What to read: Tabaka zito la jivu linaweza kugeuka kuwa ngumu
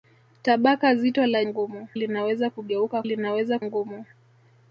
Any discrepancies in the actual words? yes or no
yes